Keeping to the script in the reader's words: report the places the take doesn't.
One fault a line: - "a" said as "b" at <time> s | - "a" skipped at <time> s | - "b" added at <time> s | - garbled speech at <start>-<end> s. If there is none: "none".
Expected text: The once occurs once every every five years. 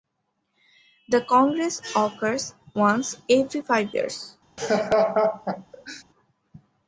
- "once" said as "congress" at 1.2 s
- "every" skipped at 3.6 s